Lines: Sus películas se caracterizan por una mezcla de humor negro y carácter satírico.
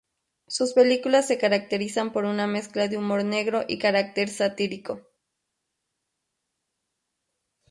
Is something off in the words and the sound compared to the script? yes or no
no